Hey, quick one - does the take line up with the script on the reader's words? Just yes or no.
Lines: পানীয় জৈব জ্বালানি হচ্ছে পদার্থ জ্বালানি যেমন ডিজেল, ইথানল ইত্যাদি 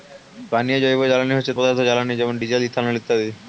yes